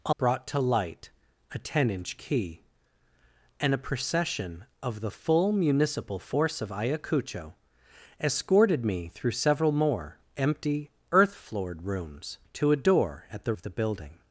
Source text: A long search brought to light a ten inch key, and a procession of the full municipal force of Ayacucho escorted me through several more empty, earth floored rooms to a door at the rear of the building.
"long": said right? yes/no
no